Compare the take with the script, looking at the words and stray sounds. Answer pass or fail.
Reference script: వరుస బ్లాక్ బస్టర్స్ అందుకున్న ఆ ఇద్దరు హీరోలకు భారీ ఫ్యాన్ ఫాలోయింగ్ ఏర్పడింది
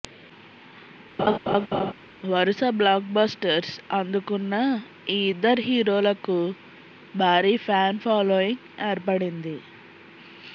fail